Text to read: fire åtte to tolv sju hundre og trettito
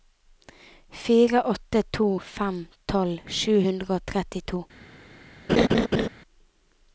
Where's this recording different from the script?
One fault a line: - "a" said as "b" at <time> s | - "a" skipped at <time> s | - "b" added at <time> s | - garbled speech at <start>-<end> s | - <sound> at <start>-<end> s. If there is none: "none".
- "fem" added at 2.2 s
- laugh at 5.5-6.1 s